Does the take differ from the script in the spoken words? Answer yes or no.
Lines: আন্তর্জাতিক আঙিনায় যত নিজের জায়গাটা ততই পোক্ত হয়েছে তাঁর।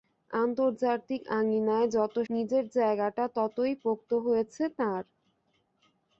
no